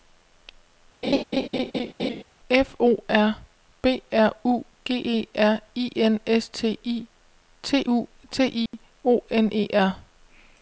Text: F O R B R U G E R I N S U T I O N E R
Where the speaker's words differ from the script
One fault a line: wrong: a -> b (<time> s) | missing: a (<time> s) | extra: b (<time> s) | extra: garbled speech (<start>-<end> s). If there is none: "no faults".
extra: T I T (6.5 s)